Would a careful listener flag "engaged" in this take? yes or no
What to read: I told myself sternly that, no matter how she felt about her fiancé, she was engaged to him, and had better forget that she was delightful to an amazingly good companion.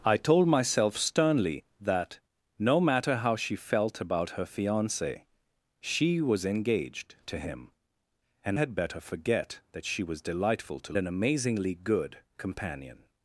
no